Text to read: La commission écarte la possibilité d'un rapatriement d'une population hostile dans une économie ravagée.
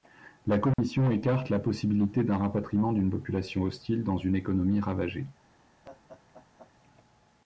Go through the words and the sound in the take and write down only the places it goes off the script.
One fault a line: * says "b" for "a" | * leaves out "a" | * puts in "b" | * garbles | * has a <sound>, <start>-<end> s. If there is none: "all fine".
* has a dropout, 0.7-0.8 s
* has a laugh, 5.8-6.7 s